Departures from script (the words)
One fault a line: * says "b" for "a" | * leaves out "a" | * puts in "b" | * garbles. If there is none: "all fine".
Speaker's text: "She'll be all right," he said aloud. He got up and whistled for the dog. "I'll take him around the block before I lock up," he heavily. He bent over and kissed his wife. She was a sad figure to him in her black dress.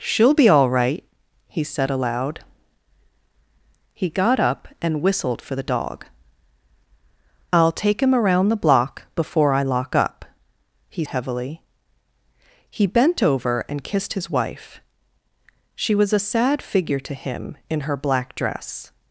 all fine